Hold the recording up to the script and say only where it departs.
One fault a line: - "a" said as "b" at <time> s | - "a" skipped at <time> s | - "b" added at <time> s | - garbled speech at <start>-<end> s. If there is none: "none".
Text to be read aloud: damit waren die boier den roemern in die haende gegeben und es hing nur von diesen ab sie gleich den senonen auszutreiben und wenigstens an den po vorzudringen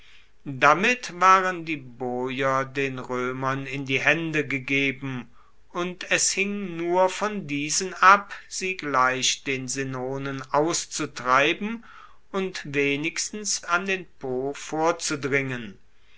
none